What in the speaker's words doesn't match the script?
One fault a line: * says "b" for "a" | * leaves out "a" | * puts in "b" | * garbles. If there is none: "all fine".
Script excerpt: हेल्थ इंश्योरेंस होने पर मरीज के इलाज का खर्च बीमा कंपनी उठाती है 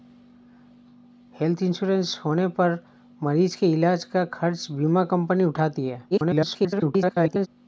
* garbles